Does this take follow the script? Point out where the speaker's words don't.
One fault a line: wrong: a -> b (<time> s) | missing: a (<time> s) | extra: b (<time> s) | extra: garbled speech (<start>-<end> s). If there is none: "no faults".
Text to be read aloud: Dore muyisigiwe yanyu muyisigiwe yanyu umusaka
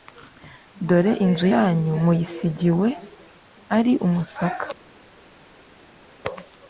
wrong: muyisigiwe -> inzu (1.2 s)
wrong: yanyu -> ari (3.8 s)